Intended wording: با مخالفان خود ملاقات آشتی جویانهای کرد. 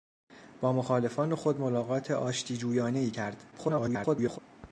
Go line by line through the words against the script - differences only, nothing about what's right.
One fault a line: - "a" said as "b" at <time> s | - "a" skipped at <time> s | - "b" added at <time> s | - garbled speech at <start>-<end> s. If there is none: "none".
- garbled speech at 3.5-4.4 s